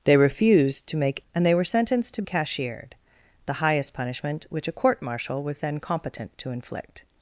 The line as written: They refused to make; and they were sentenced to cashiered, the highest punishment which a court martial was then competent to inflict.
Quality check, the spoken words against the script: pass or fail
pass